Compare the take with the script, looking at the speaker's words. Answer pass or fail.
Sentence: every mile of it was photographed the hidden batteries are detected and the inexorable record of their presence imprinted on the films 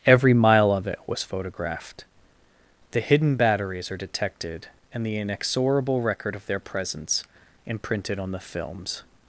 pass